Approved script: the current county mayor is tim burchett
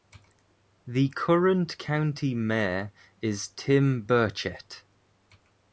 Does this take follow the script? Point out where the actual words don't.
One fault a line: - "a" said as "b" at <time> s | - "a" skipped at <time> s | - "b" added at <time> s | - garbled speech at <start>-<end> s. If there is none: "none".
none